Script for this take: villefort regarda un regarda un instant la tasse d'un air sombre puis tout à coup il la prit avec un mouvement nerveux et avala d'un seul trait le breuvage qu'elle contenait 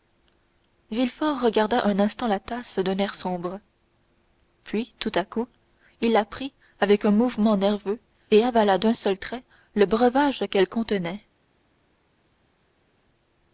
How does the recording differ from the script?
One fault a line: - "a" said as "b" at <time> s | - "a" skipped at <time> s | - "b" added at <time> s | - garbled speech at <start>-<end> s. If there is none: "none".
- "regarda un" skipped at 2.0 s